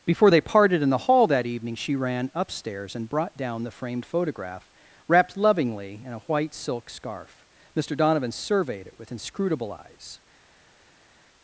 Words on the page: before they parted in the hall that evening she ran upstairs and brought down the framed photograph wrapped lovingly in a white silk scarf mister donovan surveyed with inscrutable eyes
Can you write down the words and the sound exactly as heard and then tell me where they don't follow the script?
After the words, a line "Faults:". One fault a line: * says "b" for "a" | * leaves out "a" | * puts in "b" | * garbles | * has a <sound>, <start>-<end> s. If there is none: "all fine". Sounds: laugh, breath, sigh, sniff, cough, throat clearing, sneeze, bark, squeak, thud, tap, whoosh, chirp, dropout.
before they parted in the hall that evening she ran upstairs and brought down the framed photograph wrapped lovingly in a white silk scarf mister donovan surveyed it with inscrutable eyes
Faults:
* puts in "it"